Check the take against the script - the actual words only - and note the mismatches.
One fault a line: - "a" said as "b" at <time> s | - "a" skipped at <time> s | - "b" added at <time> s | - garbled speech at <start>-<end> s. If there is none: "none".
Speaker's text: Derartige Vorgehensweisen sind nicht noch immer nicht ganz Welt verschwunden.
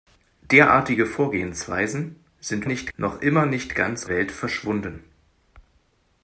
none